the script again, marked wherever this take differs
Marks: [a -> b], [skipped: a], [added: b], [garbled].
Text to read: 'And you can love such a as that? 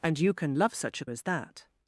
'And you can love such a as that?